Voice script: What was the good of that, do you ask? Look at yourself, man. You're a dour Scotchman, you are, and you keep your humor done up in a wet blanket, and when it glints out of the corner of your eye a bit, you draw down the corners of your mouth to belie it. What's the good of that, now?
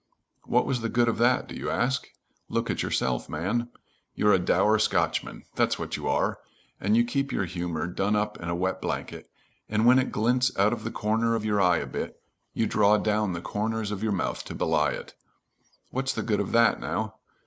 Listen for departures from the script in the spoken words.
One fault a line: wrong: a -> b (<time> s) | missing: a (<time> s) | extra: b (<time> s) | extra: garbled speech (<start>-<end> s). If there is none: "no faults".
extra: that's what (5.5 s)